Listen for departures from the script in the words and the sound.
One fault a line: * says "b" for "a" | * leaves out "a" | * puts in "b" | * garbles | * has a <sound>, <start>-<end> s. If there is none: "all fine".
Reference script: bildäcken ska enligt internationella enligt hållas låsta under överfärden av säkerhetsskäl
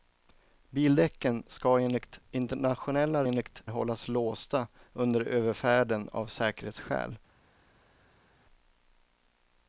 all fine